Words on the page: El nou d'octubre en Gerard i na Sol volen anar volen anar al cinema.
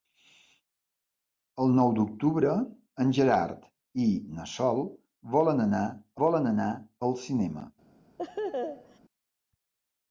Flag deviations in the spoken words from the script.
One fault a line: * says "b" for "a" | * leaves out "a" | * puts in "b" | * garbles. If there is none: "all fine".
all fine